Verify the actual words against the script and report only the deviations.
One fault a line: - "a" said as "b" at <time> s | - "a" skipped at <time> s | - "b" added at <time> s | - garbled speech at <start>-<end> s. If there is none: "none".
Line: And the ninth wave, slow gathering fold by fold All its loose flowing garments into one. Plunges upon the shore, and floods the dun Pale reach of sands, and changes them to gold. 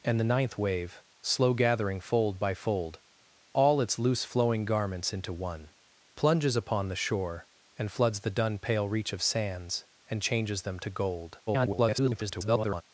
- garbled speech at 11.5-12.8 s